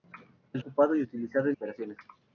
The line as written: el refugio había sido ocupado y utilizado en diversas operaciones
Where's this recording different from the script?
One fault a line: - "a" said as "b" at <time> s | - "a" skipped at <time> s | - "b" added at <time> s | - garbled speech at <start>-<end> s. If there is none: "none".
- "refugio había sido" skipped at 0.6 s
- "diversas" skipped at 1.5 s